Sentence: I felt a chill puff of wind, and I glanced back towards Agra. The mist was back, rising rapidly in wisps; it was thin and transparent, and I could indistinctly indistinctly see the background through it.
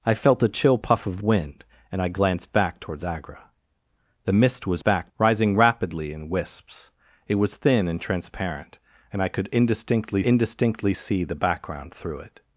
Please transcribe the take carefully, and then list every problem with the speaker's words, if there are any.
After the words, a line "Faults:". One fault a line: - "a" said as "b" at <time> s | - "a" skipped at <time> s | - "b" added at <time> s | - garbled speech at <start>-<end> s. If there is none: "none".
I felt a chill puff of wind, and I glanced back towards Agra. The mist was back, rising rapidly in wisps; it was thin and transparent, and I could indistinctly indistinctly see the background through it.
Faults:
none